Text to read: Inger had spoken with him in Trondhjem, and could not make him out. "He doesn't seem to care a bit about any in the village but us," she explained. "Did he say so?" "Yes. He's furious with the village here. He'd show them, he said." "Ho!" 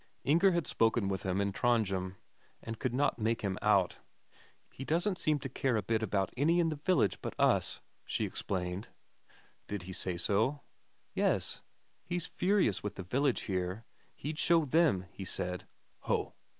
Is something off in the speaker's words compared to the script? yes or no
no